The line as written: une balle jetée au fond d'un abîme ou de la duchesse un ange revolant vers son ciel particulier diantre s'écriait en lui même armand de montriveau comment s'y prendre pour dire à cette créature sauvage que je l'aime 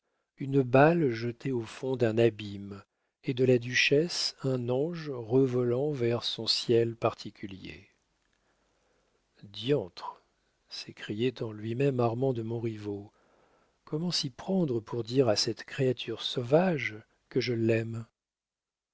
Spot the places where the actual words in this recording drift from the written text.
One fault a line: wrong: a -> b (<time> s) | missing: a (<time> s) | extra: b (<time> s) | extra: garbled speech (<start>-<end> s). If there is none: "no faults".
wrong: ou -> et (3.2 s)